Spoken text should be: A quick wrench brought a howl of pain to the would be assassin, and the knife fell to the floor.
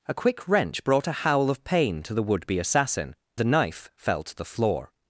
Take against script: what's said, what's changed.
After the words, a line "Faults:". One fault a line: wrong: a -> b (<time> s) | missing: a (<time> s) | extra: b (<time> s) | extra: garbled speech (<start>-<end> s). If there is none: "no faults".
A quick wrench brought a howl of pain to the would be assassin, the knife fell to the floor.
Faults:
missing: and (3.1 s)